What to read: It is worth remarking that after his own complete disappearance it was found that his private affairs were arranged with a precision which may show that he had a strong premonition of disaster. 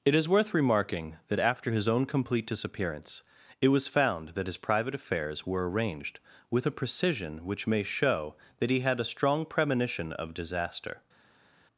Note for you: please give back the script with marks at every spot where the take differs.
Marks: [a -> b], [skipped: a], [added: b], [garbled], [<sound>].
It is worth remarking that after his own complete disappearance it was found that his private affairs were arranged with a precision which may show that he had a strong premonition of disaster.